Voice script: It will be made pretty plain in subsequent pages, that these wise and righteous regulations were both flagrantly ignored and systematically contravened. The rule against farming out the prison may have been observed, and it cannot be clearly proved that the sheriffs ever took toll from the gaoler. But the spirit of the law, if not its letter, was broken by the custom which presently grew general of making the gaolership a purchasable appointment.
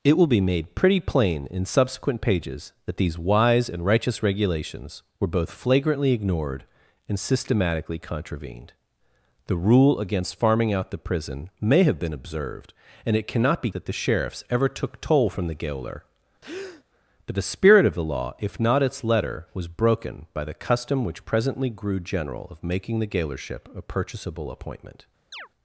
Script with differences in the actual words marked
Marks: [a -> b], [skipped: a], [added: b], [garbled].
It will be made pretty plain in subsequent pages, that these wise and righteous regulations were both flagrantly ignored and systematically contravened. The rule against farming out the prison may have been observed, and it cannot be [skipped: clearly proved] that the sheriffs ever took toll from the gaoler. But the spirit of the law, if not its letter, was broken by the custom which presently grew general of making the gaolership a purchasable appointment.